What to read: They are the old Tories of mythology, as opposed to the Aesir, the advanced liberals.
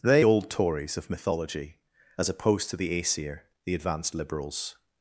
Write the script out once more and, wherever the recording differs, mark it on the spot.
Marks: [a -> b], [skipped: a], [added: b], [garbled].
They [skipped: are the] old Tories of mythology, as opposed to the Aesir, the advanced liberals.